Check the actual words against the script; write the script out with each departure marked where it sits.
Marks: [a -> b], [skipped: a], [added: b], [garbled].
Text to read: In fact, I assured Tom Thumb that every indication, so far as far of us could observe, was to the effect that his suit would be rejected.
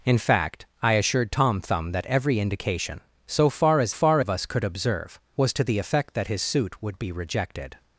In fact, I assured Tom Thumb that every indication, so far as far of us could observe, was to the effect that his suit would be rejected.